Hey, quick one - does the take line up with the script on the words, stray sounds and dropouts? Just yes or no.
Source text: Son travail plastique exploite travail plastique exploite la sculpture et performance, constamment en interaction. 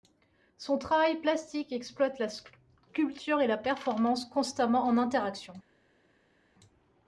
no